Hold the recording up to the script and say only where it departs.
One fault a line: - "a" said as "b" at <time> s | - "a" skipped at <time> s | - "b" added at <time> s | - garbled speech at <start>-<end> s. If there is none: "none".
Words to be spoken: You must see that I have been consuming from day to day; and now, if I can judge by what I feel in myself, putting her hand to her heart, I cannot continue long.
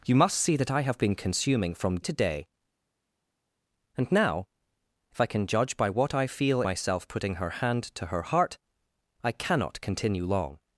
- "day" skipped at 2.0 s
- "in" skipped at 6.6 s